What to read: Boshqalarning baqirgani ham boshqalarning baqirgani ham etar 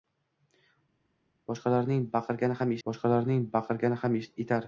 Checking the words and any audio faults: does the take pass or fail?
pass